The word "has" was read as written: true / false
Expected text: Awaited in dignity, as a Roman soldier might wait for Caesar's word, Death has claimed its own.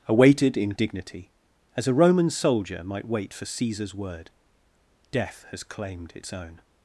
true